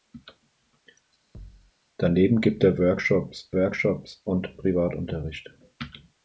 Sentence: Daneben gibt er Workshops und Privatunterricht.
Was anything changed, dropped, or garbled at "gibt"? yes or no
no